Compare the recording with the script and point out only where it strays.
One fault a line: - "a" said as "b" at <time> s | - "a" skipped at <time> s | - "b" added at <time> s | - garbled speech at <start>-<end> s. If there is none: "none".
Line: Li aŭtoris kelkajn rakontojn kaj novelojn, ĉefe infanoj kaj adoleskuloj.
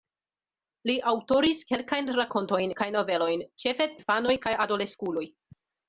none